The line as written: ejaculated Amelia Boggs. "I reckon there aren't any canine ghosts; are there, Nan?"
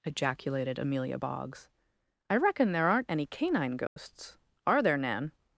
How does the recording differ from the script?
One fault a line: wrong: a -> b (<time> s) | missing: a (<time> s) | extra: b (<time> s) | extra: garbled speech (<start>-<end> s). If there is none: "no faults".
no faults